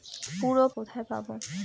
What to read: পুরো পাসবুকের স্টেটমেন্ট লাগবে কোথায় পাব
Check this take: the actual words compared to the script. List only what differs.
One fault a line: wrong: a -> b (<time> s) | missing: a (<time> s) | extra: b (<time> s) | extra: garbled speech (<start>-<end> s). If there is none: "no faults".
missing: পাসবুকের স্টেটমেন্ট লাগবে (0.7 s)